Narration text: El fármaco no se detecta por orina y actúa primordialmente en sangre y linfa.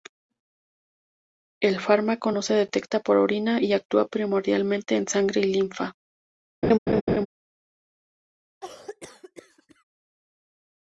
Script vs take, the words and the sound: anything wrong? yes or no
yes